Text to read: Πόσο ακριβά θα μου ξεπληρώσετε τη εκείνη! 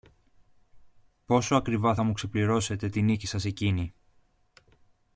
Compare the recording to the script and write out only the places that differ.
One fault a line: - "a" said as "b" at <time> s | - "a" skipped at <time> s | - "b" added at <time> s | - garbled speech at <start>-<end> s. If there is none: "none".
- "νίκη σας" added at 3.0 s